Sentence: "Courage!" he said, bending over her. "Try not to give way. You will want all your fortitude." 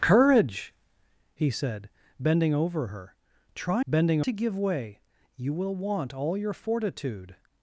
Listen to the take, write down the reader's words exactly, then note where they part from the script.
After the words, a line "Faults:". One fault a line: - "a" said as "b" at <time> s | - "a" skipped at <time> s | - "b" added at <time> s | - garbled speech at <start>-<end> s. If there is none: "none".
"Courage!" he said, bending over her. "Try bending to give way. You will want all your fortitude."
Faults:
- "not" said as "bending" at 3.9 s